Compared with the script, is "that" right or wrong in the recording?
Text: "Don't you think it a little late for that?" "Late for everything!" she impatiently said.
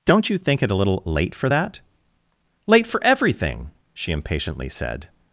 right